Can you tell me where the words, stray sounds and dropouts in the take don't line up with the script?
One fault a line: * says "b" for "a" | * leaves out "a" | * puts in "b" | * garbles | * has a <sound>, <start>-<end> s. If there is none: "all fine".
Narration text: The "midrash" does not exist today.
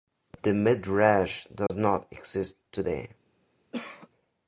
* has a dropout, 1.7-1.7 s
* has a cough, 3.7-4.1 s